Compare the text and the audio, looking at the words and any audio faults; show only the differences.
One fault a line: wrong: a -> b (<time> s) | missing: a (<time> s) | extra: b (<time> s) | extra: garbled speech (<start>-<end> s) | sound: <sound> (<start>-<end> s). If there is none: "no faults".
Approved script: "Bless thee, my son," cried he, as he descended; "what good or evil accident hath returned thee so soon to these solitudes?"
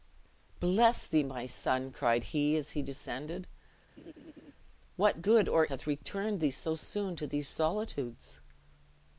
sound: laugh (4.0-4.5 s)
missing: evil accident (5.7 s)